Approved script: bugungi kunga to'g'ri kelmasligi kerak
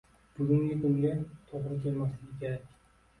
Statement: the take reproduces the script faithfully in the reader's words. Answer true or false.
true